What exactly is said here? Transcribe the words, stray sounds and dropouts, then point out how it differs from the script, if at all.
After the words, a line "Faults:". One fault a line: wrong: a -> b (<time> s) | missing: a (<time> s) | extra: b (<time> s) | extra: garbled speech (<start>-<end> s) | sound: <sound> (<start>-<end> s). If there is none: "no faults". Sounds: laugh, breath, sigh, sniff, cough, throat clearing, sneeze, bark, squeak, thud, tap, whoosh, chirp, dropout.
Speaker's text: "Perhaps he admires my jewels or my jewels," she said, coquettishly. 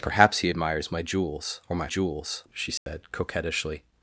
"Perhaps he admires my jewels or my jewels," she said, coquettishly.
Faults:
sound: dropout (2.8-2.9 s)